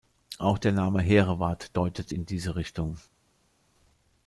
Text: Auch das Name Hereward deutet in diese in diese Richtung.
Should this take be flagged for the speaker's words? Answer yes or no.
yes